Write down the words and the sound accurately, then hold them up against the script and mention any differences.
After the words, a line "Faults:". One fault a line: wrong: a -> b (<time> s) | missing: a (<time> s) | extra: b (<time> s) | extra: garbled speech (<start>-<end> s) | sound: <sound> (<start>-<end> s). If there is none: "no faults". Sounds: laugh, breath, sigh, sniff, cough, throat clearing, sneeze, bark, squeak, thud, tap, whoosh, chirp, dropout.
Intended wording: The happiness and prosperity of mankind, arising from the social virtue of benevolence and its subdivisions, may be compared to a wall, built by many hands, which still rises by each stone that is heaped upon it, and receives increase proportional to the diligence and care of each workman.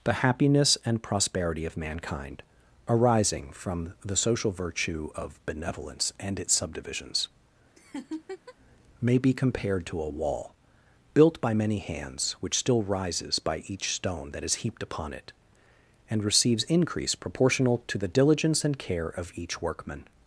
The happiness and prosperity of mankind, arising from the social virtue of benevolence and its subdivisions, may be compared to a wall, built by many hands, which still rises by each stone that is heaped upon it, and receives increase proportional to the diligence and care of each workman.
Faults:
sound: laugh (7.8-8.6 s)